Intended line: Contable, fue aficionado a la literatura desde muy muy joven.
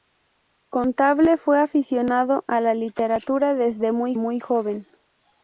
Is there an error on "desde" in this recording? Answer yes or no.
no